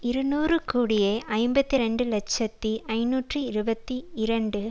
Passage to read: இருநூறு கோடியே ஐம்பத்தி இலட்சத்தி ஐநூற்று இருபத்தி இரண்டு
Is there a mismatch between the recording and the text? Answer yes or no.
yes